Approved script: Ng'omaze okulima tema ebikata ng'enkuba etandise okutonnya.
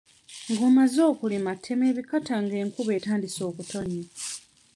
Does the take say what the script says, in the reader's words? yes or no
yes